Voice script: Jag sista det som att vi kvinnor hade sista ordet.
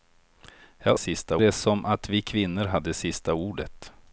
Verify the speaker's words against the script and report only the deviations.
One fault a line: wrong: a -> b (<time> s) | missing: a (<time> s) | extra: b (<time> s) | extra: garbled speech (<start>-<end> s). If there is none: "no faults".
no faults